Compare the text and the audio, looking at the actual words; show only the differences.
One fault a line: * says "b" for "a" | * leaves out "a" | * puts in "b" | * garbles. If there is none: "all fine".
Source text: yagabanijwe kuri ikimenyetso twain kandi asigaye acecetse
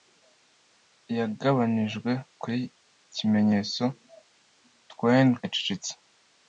* leaves out "kandi asigaye"